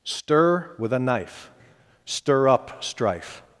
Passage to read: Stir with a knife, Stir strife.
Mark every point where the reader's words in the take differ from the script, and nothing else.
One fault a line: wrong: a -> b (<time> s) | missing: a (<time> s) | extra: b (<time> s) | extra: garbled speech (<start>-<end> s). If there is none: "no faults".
extra: up (2.5 s)